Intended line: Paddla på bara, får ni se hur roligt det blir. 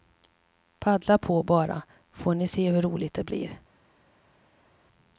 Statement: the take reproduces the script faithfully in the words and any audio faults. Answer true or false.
true